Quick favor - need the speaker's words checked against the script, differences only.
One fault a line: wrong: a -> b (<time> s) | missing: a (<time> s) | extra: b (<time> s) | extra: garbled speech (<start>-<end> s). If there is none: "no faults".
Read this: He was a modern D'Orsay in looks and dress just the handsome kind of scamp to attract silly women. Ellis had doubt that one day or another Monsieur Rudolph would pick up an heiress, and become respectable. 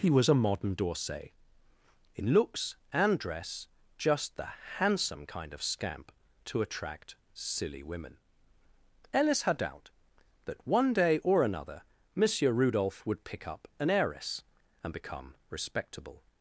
no faults